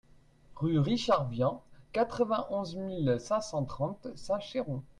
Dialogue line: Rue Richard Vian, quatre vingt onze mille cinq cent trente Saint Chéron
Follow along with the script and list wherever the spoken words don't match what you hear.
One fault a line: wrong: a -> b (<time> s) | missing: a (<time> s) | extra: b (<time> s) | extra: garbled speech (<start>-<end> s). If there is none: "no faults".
no faults